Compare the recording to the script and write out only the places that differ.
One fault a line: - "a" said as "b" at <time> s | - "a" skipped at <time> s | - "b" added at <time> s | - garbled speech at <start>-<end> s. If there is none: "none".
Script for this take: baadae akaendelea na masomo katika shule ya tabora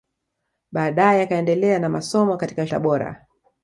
- "shule ya" skipped at 2.7 s